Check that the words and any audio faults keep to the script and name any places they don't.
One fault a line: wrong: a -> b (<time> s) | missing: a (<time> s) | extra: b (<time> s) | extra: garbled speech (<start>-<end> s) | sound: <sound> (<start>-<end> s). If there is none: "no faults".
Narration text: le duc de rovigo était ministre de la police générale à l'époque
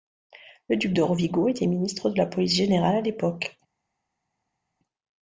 no faults